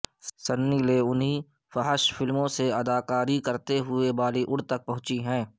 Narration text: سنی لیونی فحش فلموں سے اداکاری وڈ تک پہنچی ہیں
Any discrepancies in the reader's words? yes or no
yes